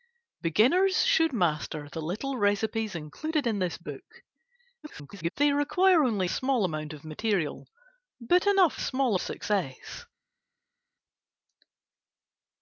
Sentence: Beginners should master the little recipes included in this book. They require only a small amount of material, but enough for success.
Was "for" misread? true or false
true